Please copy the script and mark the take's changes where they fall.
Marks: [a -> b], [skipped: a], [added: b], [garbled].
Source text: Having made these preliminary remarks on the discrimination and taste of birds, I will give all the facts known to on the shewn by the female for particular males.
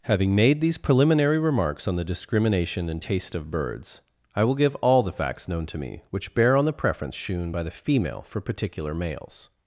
Having made these preliminary remarks on the discrimination and taste of birds, I will give all the facts known to [added: me which bear] on the [added: preference] shewn by the female for particular males.